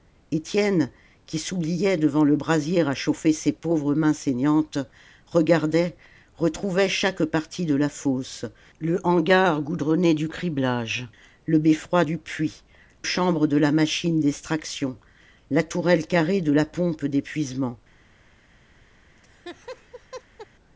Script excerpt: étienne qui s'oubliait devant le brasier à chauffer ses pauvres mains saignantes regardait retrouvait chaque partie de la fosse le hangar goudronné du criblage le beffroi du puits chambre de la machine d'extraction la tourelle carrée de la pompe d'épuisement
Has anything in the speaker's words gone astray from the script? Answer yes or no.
no